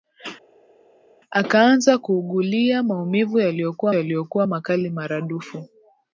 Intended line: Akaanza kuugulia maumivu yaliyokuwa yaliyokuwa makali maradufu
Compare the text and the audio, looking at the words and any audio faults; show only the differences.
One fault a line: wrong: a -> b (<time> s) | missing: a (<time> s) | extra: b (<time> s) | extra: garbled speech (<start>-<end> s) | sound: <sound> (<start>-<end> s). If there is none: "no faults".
no faults